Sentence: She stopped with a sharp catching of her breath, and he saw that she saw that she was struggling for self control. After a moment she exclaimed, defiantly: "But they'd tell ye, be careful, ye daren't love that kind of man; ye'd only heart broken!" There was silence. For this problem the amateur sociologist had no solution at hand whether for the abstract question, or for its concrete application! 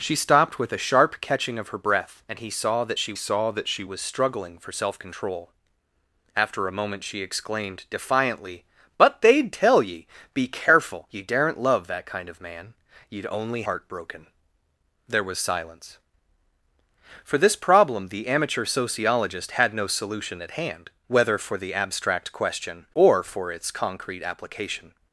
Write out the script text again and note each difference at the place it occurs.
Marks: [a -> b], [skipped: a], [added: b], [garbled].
She stopped with a sharp catching of her breath, and he saw that she saw that she was struggling for self control. After a moment she exclaimed, defiantly: "But they'd tell ye, be careful, ye daren't love that kind of man; ye'd only heart broken!" There was silence. For this problem the amateur sociologist had no solution at hand whether for the abstract question, or for its concrete application!